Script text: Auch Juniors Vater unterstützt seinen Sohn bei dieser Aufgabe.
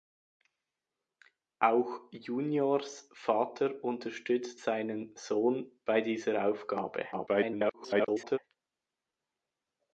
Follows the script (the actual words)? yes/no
no